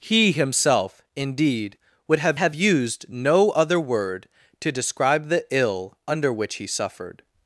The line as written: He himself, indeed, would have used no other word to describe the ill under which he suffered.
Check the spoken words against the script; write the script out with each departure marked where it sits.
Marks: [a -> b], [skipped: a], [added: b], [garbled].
He himself, indeed, would have [added: have] used no other word to describe the ill under which he suffered.